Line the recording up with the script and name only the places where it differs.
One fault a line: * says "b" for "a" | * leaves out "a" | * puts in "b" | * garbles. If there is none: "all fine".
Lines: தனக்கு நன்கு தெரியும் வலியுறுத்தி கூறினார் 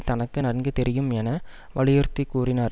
* puts in "என"